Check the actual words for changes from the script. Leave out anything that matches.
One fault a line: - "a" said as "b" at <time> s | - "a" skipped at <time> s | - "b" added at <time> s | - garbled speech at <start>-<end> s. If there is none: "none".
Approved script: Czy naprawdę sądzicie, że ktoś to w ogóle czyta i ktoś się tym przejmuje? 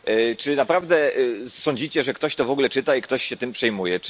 none